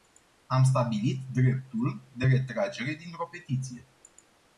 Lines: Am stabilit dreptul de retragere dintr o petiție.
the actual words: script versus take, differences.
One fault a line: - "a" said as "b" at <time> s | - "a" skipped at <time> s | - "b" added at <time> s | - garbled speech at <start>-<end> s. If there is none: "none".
none